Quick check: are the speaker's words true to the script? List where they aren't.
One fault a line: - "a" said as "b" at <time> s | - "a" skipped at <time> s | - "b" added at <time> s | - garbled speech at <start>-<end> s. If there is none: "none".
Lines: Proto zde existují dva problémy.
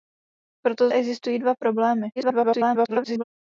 - "zde" skipped at 0.9 s
- garbled speech at 2.2-3.2 s